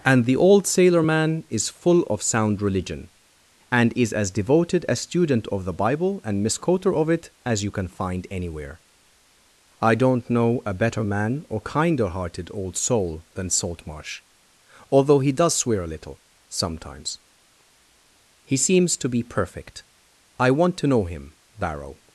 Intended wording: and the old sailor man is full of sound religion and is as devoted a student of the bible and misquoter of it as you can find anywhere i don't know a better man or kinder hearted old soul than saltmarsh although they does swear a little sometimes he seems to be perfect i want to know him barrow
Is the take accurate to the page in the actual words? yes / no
no